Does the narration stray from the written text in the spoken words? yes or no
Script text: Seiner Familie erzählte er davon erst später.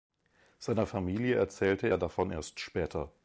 no